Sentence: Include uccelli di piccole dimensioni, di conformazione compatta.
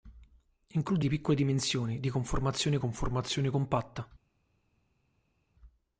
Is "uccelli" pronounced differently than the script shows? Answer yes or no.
yes